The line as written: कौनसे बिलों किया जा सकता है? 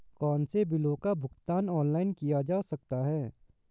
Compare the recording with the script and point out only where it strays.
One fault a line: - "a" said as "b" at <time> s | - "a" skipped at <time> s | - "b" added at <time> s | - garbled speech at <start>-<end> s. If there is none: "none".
- "का भुगतान ऑनलाइन" added at 0.9 s